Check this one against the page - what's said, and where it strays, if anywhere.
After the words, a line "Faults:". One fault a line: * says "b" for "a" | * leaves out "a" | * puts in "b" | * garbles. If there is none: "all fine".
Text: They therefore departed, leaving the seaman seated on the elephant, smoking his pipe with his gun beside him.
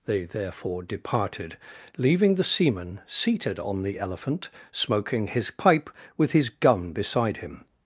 They therefore departed, leaving the seaman seated on the elephant, smoking his pipe with his gun beside him.
Faults:
all fine